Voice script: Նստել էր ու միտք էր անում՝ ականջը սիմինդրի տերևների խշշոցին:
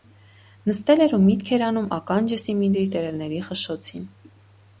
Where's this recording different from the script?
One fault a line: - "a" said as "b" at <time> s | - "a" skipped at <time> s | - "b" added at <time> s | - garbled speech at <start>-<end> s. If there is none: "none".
none